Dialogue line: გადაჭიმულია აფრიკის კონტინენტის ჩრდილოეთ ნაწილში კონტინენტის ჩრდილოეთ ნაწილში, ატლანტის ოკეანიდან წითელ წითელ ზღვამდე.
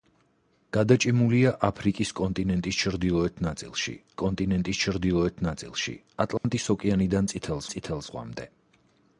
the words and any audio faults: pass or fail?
fail